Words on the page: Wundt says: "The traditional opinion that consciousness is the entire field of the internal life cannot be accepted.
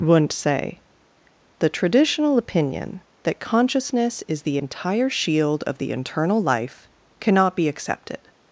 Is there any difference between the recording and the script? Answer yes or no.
yes